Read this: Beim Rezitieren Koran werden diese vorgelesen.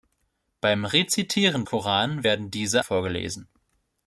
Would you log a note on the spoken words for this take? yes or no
no